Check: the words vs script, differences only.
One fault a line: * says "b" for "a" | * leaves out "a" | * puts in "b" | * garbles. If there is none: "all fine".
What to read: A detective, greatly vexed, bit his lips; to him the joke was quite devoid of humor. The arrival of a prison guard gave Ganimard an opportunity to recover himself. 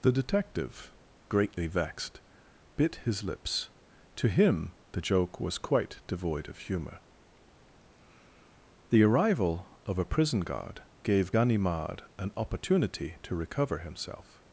* says "The" for "A"